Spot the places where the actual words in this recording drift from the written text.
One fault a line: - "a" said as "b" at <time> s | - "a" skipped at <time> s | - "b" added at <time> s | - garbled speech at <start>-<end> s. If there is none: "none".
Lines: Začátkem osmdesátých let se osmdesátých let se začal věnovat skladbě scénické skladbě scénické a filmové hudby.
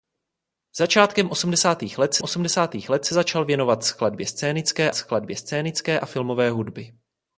none